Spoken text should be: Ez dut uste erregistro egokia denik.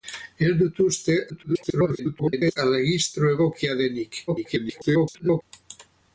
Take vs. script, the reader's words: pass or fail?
fail